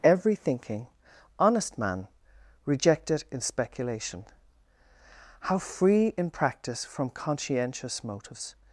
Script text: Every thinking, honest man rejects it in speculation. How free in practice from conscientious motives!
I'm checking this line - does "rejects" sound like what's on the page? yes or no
no